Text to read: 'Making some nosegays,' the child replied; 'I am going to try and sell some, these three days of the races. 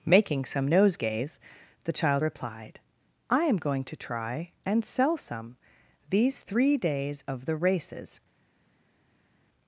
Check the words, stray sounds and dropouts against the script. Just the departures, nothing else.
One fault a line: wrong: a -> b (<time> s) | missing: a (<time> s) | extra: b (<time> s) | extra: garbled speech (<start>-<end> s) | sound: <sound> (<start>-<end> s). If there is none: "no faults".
no faults